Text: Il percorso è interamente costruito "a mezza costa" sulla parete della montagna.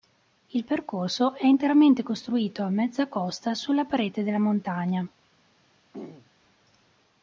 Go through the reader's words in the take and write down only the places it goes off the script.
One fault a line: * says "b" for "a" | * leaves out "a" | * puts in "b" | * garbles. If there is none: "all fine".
all fine